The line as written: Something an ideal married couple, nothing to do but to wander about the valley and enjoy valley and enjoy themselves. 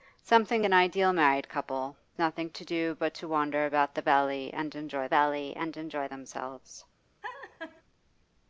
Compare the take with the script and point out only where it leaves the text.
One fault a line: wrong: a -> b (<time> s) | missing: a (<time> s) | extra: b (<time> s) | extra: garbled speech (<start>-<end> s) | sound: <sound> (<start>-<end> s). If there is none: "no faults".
sound: laugh (7.2-7.8 s)